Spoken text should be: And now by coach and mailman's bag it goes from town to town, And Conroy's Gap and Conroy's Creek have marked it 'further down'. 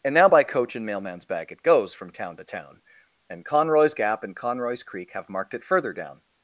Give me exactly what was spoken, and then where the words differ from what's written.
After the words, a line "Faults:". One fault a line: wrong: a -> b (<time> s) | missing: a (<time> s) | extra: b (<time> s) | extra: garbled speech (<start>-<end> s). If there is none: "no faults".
And now by coach and mailman's bag it goes from town to town, And Conroy's Gap and Conroy's Creek have marked it 'further down'.
Faults:
no faults